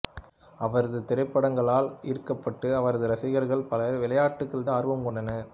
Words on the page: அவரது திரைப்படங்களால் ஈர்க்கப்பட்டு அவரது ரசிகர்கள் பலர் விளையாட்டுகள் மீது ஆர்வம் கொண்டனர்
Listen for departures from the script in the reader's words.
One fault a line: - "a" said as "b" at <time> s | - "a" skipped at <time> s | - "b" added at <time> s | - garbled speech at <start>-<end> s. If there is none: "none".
- "மீது" skipped at 4.7 s